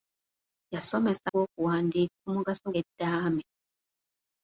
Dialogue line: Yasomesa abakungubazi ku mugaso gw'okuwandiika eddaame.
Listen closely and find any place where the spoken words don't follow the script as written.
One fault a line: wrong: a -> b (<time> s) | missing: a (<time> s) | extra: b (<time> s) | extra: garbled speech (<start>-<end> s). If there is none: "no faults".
wrong: abakungubazi -> gw'okuwandiika (1.3 s)
missing: gw'okuwandiika (2.7 s)